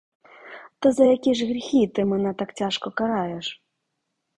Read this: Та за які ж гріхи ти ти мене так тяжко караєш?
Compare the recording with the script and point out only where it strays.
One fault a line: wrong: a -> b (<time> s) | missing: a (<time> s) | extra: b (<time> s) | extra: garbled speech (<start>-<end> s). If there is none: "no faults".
missing: ти (2.1 s)